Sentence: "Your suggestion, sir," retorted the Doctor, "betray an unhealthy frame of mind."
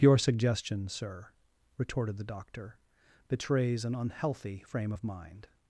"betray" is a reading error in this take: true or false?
true